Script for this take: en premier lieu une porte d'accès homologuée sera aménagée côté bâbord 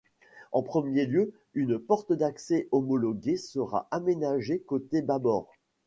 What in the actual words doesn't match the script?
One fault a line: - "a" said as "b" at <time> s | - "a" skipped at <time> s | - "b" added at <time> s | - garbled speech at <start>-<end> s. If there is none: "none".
none